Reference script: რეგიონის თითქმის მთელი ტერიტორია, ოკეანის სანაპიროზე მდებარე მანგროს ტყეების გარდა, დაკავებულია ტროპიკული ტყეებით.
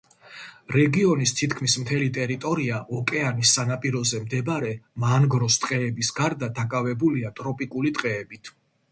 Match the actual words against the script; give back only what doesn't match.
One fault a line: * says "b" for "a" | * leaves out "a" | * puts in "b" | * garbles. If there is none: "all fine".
all fine